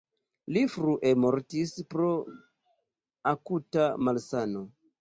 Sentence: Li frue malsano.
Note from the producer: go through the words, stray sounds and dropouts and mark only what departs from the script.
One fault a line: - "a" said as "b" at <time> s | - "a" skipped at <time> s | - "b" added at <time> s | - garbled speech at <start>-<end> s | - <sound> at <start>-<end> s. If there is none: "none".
- "mortis pro akuta" added at 1.2 s